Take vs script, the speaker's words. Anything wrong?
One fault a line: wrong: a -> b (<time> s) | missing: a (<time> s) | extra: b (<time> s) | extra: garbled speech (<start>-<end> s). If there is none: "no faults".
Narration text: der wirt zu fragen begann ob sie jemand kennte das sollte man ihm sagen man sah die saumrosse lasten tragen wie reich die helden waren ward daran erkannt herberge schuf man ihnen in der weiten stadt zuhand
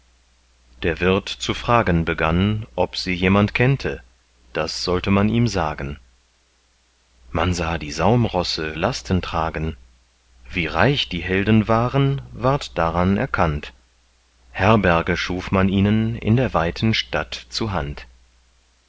no faults